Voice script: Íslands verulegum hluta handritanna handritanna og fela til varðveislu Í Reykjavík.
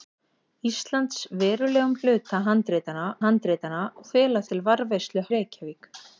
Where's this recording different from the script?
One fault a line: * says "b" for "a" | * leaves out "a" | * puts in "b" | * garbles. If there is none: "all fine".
all fine